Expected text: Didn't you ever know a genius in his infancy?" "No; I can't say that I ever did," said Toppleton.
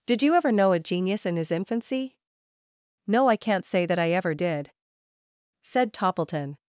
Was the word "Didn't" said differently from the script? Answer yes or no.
yes